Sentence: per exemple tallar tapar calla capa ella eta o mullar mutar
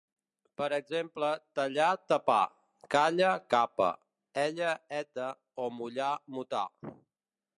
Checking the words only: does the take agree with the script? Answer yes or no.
yes